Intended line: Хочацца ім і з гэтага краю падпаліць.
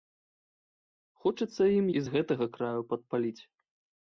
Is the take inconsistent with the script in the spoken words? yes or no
no